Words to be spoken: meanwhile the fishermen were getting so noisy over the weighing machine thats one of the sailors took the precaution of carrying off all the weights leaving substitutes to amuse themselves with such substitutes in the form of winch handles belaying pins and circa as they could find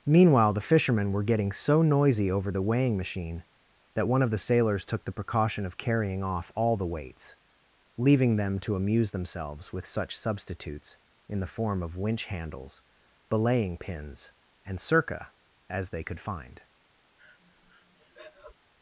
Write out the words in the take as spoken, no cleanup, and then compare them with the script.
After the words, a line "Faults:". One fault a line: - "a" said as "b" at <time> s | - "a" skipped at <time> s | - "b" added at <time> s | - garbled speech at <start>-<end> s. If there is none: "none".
meanwhile the fishermen were getting so noisy over the weighing machine that one of the sailors took the precaution of carrying off all the weights leaving them to amuse themselves with such substitutes in the form of winch handles belaying pins and circa as they could find
Faults:
- "thats" said as "that" at 3.9 s
- "substitutes" said as "them" at 8.4 s